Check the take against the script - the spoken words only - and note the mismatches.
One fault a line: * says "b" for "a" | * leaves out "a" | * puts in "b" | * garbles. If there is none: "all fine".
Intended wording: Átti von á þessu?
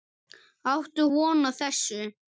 all fine